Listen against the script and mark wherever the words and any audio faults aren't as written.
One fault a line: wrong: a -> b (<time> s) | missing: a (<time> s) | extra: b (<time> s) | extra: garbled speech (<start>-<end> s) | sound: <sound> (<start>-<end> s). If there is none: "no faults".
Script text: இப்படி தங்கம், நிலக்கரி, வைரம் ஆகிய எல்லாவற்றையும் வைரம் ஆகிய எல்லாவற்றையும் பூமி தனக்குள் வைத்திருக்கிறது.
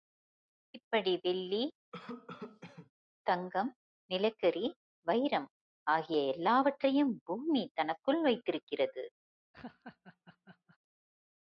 extra: வெள்ளி (1.2 s)
sound: cough (1.9-2.9 s)
missing: வைரம் ஆகிய எல்லாவற்றையும் (7.2 s)
sound: laugh (9.5-10.8 s)